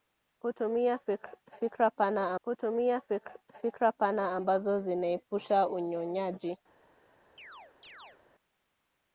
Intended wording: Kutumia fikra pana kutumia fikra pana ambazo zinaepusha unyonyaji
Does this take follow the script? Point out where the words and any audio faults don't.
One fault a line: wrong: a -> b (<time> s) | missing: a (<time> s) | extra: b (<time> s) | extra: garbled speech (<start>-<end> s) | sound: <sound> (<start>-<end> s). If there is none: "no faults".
sound: chirp (7.4-8.2 s)